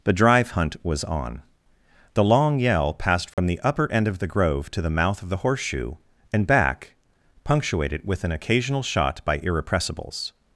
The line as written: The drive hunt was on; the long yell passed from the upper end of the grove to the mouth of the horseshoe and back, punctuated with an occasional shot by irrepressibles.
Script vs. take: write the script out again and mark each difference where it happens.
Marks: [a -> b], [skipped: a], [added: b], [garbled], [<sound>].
The drive hunt was on; the long yell passed from [dropout] the upper end of the grove to the mouth of the horseshoe and back, punctuated with an occasional shot by irrepressibles.